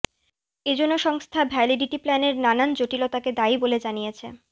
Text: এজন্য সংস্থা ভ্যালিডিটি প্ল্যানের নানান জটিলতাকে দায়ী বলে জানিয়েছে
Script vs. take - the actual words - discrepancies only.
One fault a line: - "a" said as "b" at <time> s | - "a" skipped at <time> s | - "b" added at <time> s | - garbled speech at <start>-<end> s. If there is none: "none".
none